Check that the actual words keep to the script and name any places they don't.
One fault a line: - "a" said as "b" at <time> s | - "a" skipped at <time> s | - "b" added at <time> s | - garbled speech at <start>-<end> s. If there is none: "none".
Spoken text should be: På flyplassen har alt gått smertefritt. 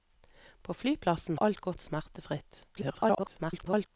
- "har" skipped at 1.4 s
- garbled speech at 2.7-3.9 s